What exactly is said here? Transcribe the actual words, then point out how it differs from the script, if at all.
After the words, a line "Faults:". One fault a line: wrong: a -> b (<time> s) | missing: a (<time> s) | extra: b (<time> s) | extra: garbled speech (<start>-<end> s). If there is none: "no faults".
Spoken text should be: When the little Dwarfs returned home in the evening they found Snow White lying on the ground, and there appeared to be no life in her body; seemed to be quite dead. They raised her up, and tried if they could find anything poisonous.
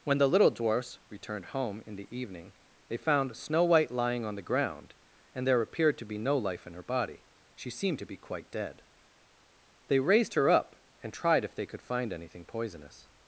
When the little Dwarfs returned home in the evening they found Snow White lying on the ground, and there appeared to be no life in her body; she seemed to be quite dead. They raised her up, and tried if they could find anything poisonous.
Faults:
extra: she (7.5 s)